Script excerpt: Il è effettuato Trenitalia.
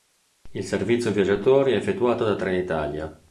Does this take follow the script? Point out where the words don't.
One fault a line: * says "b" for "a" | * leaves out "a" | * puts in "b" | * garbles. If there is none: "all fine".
* puts in "servizio viaggiatori"
* puts in "da"